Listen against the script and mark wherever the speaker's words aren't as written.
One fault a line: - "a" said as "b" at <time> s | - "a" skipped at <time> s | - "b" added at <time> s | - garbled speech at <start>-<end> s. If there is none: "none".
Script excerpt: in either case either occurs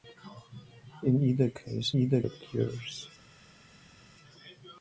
none